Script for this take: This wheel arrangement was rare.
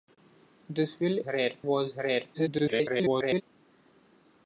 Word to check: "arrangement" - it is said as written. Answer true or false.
false